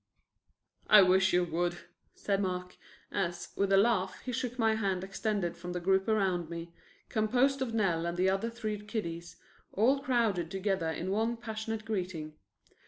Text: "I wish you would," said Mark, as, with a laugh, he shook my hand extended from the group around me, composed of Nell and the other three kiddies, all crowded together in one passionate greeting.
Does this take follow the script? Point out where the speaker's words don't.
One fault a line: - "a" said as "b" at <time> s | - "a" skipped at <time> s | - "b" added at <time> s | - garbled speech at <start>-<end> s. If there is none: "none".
none